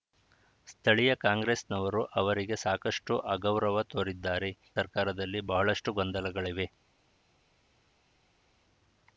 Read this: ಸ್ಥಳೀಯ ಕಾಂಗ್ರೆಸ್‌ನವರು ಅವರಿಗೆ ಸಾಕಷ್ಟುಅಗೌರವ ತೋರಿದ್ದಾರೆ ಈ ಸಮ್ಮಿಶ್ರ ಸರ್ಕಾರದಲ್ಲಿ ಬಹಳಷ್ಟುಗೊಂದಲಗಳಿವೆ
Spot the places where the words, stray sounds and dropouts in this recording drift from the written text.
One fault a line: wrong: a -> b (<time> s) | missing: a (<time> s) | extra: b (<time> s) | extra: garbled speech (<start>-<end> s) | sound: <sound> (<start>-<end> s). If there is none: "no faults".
missing: ಈ ಸಮ್ಮಿಶ್ರ (4.5 s)